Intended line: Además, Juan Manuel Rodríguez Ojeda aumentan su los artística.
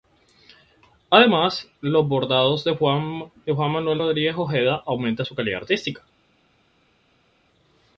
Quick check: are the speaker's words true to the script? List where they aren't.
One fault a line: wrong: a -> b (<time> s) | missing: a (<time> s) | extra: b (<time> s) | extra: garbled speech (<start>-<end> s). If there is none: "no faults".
extra: los bordados de (1.8 s)
wrong: los -> calidad (5.4 s)